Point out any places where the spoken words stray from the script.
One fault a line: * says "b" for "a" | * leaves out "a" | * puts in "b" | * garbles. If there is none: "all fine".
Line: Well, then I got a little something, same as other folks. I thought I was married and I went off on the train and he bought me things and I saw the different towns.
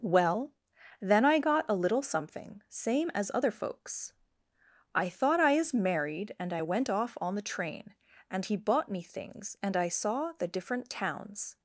* says "is" for "was"